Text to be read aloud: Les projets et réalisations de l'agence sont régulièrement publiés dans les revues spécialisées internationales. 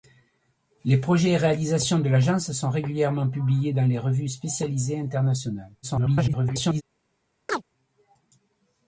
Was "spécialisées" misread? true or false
false